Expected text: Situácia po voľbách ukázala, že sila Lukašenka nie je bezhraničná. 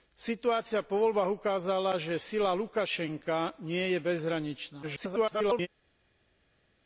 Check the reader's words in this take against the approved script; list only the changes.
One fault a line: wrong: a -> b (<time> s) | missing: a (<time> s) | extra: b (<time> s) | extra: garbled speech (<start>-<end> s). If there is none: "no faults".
extra: garbled speech (4.8-5.7 s)